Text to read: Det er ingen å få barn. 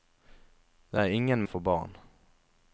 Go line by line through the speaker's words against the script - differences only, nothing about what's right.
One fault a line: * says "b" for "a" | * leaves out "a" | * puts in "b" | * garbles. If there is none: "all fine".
all fine